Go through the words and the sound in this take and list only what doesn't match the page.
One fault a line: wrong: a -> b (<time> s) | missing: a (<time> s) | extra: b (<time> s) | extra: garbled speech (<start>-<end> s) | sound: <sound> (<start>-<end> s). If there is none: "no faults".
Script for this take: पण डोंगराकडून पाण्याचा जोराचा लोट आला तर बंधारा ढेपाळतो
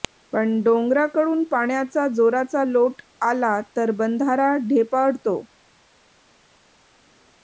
no faults